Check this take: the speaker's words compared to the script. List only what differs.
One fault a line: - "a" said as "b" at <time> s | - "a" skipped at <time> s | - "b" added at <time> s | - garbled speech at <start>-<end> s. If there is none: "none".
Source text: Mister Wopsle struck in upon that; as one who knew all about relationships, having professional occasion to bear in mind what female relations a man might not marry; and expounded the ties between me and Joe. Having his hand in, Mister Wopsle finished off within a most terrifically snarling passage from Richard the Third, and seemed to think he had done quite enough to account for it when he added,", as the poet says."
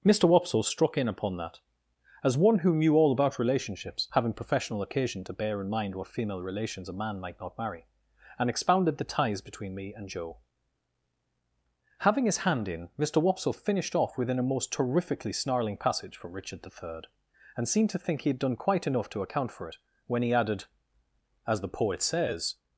none